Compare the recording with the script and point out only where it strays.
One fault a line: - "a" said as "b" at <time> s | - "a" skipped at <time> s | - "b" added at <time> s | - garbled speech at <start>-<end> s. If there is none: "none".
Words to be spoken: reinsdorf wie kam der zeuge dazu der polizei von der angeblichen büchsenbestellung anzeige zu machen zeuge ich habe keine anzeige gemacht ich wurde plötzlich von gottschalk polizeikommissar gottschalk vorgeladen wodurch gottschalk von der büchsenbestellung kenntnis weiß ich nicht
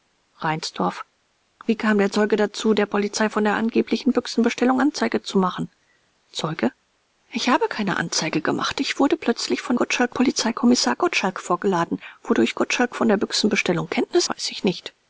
none